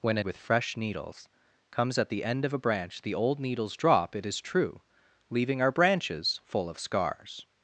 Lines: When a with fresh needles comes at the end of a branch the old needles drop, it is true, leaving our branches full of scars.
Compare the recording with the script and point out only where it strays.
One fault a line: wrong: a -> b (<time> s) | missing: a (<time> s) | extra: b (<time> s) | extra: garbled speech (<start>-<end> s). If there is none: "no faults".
no faults